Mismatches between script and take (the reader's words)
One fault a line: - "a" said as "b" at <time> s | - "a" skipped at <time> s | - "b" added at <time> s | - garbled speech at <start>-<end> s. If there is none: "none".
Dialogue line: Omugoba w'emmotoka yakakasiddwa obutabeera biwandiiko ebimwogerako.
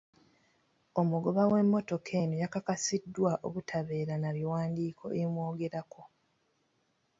- "eno" added at 2.2 s
- "na" added at 4.2 s